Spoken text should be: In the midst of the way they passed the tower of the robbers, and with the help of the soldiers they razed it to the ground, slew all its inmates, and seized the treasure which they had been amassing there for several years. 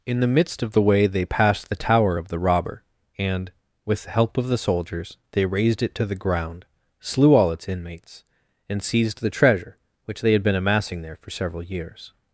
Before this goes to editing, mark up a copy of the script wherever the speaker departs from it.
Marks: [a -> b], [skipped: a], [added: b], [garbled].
In the midst of the way they passed the tower of the [robbers, -> robber] and with the help of the soldiers they razed it to the ground, slew all its inmates, and seized the treasure which they had been amassing there for several years.